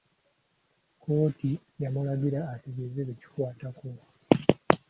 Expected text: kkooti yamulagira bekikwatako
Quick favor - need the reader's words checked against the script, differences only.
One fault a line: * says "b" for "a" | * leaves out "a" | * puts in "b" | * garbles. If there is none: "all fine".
* puts in "ategeeze"